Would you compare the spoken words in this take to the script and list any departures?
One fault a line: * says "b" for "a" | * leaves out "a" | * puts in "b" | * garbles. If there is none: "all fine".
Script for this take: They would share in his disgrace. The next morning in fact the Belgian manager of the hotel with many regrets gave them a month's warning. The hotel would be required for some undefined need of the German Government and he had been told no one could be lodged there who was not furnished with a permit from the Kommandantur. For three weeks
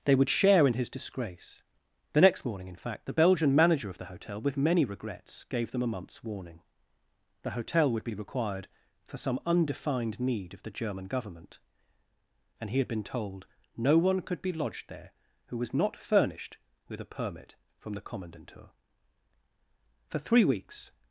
all fine